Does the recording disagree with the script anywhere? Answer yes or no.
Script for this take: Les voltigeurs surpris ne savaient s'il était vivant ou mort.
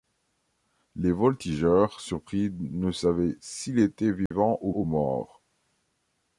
yes